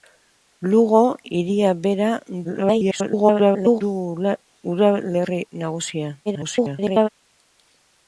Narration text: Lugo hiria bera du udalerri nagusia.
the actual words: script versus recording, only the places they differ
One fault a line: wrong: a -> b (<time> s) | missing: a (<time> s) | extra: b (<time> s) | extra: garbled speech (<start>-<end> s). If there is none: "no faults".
extra: garbled speech (2.4-3.8 s)
extra: garbled speech (6.3-7.1 s)